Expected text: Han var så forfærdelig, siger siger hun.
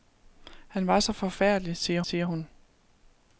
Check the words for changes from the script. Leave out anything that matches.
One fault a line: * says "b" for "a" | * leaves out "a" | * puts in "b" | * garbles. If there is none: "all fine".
all fine